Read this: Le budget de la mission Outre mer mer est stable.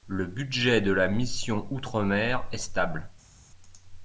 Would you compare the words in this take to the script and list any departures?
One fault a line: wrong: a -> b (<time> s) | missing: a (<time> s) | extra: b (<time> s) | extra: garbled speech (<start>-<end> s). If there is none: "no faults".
missing: mer (2.5 s)